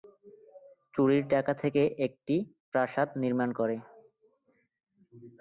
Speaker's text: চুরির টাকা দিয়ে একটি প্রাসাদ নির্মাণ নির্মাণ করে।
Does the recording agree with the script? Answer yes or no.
no